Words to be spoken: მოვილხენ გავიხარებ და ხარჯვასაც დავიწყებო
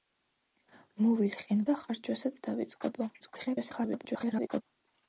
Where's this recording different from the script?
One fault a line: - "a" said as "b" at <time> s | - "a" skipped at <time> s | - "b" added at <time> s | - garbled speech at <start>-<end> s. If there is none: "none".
- "გავიხარებ" skipped at 1.6 s
- garbled speech at 3.2-4.6 s